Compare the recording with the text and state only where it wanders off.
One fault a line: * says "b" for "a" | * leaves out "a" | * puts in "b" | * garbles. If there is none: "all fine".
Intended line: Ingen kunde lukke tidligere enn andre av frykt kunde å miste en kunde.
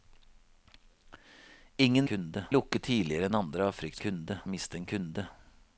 all fine